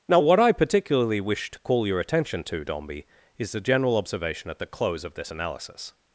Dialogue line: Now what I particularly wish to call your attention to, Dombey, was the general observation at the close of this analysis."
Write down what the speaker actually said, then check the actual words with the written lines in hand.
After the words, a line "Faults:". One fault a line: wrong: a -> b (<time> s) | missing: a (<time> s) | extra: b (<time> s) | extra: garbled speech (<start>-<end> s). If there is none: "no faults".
Now what I particularly wish to call your attention to, Dombey, is the general observation at the close of this analysis."
Faults:
wrong: was -> is (3.4 s)